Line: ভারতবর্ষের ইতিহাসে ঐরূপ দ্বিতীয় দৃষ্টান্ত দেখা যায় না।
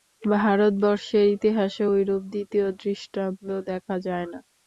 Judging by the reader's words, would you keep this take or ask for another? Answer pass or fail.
pass